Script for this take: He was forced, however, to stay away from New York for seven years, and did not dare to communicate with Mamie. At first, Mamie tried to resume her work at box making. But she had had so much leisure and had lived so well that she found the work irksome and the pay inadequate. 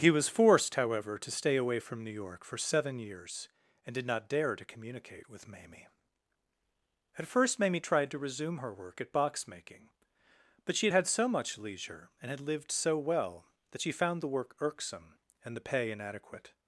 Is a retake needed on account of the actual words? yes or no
no